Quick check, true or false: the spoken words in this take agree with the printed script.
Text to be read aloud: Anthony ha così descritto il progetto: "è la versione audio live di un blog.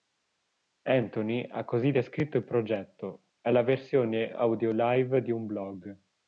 true